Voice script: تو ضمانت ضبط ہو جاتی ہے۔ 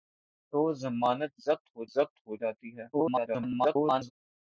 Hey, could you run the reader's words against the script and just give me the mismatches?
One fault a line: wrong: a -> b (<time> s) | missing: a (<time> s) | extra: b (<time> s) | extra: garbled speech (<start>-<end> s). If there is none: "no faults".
extra: ضبط ہو (1.9 s)
extra: garbled speech (2.9-4.1 s)